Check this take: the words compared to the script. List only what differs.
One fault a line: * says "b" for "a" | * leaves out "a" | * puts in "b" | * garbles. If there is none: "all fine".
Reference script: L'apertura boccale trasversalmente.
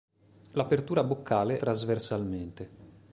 all fine